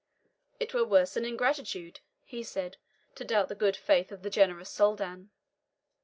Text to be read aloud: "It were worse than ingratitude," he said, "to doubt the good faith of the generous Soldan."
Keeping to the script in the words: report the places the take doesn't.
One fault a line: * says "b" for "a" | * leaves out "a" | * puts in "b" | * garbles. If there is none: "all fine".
all fine